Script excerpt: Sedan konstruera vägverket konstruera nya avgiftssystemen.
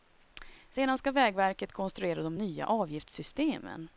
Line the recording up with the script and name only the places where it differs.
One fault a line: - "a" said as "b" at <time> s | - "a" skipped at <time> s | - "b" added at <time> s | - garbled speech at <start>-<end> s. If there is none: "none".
- "konstruera" said as "ska" at 1.0 s
- "de" added at 2.2 s